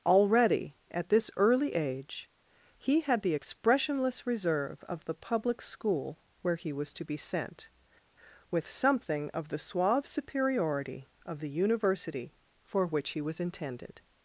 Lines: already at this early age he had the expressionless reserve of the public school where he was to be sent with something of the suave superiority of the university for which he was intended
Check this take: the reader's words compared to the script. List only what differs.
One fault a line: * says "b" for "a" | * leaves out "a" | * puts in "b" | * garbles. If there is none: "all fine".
all fine